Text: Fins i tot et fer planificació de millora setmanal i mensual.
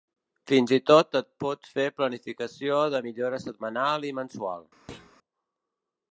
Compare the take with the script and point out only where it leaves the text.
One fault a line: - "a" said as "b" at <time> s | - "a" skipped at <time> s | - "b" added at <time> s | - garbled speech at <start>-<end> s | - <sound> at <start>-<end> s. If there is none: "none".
- "pots" added at 1.4 s
- thud at 4.9-5.2 s